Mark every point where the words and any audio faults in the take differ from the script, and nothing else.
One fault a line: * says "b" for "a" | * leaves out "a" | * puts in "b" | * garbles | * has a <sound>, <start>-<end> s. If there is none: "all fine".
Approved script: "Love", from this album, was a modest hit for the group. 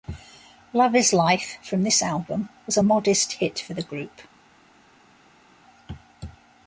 * puts in "is Life"